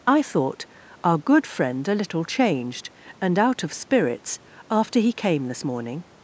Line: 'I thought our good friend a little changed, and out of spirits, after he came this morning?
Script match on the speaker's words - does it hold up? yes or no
yes